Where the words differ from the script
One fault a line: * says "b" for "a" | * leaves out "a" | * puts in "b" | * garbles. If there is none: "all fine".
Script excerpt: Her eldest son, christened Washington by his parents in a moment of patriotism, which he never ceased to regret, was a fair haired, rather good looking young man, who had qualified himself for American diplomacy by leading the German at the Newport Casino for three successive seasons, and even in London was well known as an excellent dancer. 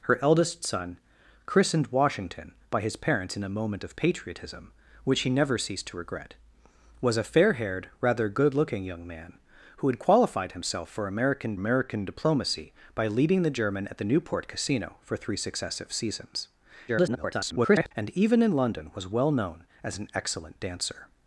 * puts in "American"
* garbles